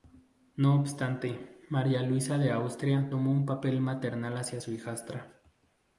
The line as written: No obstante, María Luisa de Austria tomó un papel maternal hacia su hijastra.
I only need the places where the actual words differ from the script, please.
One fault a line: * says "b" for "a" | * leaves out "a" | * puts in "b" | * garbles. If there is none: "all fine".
all fine